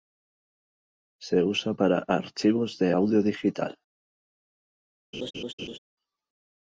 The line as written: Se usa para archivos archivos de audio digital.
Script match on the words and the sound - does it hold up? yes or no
no